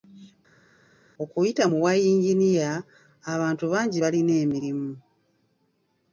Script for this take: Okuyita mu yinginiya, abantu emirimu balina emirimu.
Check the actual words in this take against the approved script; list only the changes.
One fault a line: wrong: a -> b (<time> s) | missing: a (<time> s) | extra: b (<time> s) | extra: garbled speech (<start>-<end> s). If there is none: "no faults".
extra: bwa (1.8 s)
wrong: emirimu -> bangi (3.7 s)